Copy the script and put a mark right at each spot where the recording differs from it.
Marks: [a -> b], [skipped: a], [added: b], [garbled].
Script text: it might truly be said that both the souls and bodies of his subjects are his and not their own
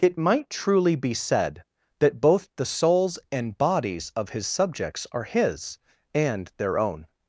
it might truly be said that both the souls and bodies of his subjects are his and [skipped: not] their own